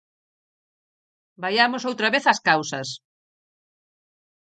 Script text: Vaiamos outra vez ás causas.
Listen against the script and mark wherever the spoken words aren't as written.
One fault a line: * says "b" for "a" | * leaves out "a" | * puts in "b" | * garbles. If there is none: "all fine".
all fine